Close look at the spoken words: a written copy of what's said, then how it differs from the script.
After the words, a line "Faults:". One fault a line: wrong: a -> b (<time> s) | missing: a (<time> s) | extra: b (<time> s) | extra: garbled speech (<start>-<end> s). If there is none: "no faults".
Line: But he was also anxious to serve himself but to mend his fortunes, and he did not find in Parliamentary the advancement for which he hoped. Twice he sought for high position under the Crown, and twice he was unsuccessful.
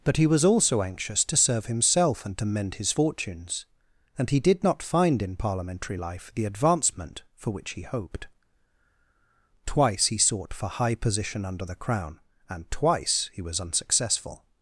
But he was also anxious to serve himself and to mend his fortunes, and he did not find in Parliamentary life the advancement for which he hoped. Twice he sought for high position under the Crown, and twice he was unsuccessful.
Faults:
wrong: but -> and (2.2 s)
extra: life (6.0 s)